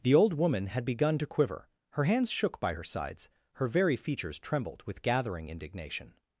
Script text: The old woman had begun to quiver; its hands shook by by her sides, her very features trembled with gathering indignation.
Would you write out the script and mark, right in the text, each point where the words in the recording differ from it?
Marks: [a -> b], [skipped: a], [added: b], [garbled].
The old woman had begun to quiver; [its -> her] hands shook by [skipped: by] her sides, her very features trembled with gathering indignation.